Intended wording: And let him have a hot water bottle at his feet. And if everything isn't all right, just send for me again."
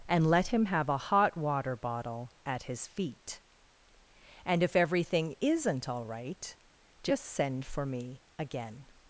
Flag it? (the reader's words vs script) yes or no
no